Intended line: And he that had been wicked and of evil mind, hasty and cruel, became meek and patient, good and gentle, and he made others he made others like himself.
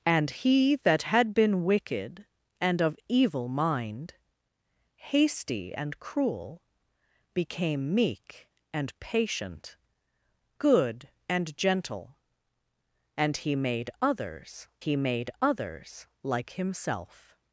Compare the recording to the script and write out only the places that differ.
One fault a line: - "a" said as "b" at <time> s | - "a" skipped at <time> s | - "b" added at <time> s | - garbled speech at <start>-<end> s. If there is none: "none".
none